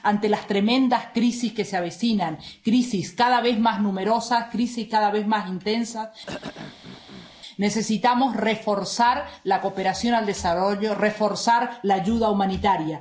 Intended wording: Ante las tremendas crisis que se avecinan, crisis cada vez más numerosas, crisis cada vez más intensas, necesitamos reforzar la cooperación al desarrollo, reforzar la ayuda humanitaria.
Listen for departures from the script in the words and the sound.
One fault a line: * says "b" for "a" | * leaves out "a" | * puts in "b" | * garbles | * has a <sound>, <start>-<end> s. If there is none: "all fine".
* has a throat clearing, 6.3-7.3 s